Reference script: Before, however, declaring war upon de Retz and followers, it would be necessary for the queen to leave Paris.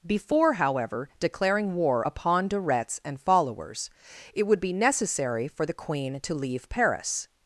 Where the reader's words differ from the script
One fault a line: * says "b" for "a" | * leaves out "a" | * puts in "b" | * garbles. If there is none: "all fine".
all fine